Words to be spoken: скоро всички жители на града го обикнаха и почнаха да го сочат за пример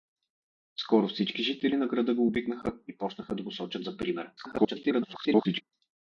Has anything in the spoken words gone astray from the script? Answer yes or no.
yes